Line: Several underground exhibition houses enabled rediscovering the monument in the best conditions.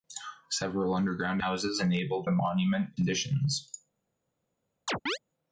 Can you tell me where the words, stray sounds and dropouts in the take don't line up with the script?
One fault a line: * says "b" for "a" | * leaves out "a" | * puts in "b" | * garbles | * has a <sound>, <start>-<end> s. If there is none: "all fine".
* leaves out "exhibition"
* leaves out "rediscovering"
* leaves out "in the best"
* has a chirp, 4.9-5.2 s